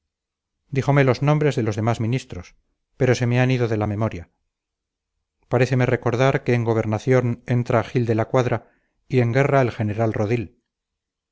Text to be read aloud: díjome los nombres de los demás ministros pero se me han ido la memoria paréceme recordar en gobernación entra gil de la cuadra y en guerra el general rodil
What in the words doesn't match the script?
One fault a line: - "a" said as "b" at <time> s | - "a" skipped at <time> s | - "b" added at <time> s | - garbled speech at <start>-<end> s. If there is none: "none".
- "de" added at 3.7 s
- "que" added at 6.4 s